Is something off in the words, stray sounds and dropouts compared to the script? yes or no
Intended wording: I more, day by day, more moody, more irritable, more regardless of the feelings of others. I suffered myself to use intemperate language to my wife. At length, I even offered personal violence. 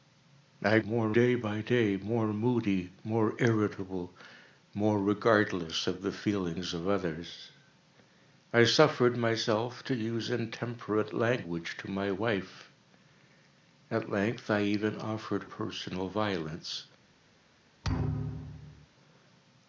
yes